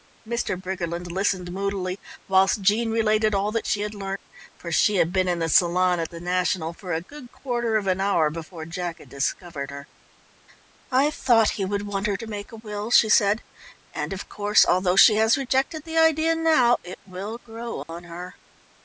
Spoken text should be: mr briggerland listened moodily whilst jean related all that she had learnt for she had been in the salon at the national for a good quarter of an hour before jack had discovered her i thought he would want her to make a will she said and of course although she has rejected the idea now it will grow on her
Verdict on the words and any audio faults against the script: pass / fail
fail